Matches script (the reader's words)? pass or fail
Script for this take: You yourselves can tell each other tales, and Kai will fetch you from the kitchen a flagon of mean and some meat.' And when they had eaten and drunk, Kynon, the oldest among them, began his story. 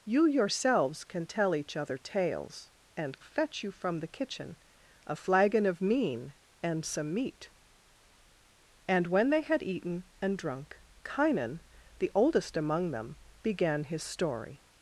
fail